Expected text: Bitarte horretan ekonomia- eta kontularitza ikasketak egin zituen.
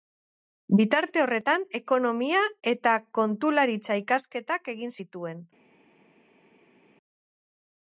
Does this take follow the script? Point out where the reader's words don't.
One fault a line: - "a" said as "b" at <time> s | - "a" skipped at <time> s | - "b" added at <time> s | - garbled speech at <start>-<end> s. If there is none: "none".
none